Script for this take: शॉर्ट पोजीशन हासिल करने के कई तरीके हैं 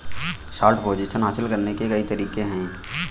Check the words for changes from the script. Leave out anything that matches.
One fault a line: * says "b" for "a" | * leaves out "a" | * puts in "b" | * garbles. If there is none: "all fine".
all fine